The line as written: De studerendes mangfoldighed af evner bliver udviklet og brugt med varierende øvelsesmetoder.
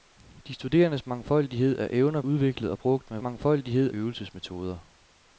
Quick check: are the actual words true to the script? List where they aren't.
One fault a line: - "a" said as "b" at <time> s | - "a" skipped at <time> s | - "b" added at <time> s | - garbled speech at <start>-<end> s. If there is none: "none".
- "bliver" skipped at 2.2 s
- "varierende" said as "mangfoldighed" at 3.2 s